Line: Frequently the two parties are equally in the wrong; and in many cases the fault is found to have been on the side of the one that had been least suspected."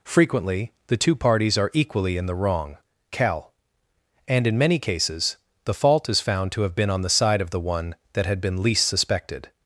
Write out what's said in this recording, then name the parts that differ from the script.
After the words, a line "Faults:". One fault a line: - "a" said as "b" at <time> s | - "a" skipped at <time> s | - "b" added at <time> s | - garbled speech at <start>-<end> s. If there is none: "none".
Frequently the two parties are equally in the wrong; cal and in many cases the fault is found to have been on the side of the one that had been least suspected."
Faults:
- "cal" added at 3.1 s